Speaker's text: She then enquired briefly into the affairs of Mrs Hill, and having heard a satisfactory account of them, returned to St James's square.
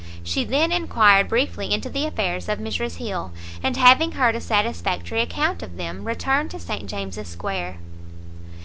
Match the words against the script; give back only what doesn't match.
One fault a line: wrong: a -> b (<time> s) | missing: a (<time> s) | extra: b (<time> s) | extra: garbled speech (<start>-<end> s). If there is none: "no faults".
no faults